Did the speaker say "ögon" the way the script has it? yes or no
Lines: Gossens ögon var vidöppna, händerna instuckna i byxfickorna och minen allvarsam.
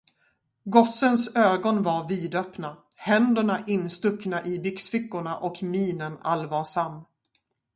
yes